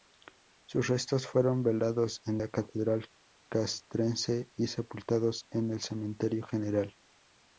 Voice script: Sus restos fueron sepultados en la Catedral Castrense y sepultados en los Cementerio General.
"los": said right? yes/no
no